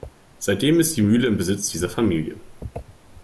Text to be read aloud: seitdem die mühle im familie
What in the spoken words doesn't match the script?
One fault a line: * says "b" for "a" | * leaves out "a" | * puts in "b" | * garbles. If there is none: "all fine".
* puts in "ist"
* puts in "besitz dieser"